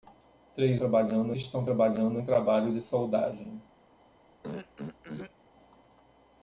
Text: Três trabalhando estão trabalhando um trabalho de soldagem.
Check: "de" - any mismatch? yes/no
no